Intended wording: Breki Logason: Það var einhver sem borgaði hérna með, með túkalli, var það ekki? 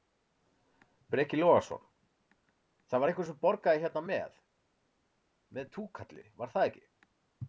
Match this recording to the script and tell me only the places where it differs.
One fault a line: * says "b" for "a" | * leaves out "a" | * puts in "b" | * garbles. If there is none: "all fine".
all fine